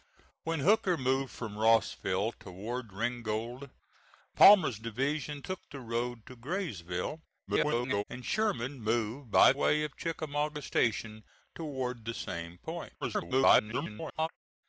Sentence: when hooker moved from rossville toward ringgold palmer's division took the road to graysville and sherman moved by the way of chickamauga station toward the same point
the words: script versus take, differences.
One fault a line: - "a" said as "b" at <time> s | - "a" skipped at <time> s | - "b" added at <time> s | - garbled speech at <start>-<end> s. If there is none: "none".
- garbled speech at 7.5-8.0 s
- "the" skipped at 9.5 s
- garbled speech at 13.0-14.3 s